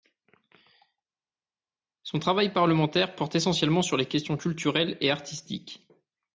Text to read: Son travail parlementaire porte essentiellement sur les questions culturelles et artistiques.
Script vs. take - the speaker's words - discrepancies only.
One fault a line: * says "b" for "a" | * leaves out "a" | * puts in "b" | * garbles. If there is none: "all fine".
all fine